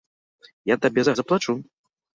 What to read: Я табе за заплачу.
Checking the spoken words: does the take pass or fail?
pass